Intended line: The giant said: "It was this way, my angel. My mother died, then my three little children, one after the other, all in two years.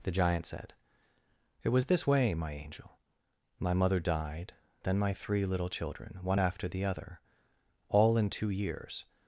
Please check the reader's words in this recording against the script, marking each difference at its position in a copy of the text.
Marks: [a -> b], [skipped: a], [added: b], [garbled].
The giant said: "It was this way, my angel. My mother died, then my three little children, one after the other, all in two years.